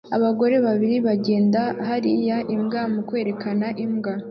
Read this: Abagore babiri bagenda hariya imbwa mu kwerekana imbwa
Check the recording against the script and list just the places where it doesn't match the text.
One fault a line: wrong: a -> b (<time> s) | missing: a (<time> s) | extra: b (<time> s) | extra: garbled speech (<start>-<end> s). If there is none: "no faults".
no faults